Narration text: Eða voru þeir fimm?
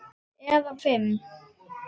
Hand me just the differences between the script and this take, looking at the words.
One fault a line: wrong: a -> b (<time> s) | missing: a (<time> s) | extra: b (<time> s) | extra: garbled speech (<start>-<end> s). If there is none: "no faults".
missing: voru þeir (0.7 s)